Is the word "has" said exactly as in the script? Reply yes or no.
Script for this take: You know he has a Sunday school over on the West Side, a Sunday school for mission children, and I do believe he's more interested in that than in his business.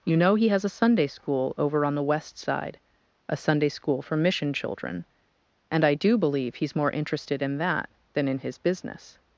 yes